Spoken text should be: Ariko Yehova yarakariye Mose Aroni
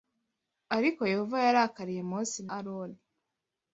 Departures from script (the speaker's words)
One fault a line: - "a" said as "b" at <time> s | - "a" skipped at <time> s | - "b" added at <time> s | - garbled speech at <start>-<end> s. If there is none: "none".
none